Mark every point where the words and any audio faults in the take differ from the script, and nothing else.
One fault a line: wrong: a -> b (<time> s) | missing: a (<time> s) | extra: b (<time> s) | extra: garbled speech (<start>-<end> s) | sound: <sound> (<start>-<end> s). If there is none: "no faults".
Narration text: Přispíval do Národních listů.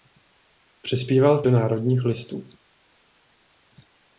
no faults